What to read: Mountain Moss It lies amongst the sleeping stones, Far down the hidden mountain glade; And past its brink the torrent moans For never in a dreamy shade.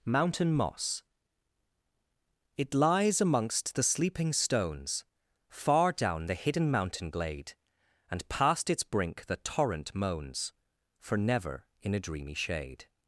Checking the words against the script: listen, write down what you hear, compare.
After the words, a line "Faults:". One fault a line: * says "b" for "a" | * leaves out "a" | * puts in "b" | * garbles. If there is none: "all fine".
Mountain Moss It lies amongst the sleeping stones, Far down the hidden mountain glade; And past its brink the torrent moans For never in a dreamy shade.
Faults:
all fine